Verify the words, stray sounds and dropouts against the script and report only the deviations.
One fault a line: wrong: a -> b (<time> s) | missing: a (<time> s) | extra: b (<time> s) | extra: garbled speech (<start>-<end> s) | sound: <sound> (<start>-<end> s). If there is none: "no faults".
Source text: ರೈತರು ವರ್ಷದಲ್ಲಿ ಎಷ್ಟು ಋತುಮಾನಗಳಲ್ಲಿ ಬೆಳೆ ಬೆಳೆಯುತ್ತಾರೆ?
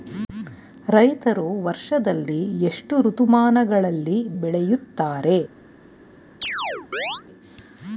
missing: ಬೆಳೆ (4.3 s)
sound: chirp (6.4-7.2 s)